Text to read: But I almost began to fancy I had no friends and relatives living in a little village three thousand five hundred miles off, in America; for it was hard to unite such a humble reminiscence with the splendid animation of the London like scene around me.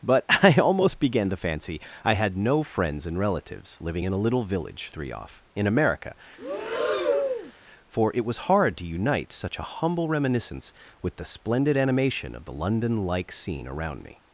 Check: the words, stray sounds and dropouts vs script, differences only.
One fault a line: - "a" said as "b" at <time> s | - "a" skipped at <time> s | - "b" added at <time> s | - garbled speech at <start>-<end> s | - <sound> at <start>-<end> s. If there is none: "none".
- "thousand five hundred miles" skipped at 5.1 s
- breath at 6.4-7.5 s